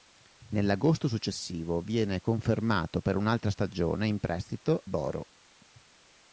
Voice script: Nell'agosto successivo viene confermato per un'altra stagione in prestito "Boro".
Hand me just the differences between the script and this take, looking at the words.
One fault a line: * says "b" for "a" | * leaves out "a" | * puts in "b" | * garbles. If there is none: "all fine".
all fine